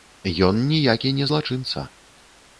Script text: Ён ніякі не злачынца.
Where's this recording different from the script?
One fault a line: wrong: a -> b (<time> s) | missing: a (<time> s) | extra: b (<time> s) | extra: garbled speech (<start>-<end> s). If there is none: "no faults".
no faults